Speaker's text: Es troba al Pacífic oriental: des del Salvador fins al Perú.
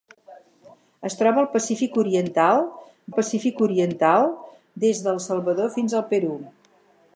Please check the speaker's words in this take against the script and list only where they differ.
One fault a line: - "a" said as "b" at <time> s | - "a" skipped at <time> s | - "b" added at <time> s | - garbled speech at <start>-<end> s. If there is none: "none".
- "Pacífic oriental" added at 3.1 s